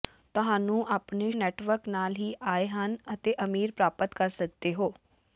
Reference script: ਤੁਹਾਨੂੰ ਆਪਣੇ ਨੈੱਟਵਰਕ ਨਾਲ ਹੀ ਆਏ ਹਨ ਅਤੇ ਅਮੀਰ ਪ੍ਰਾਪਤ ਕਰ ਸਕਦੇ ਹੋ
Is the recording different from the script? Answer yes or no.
no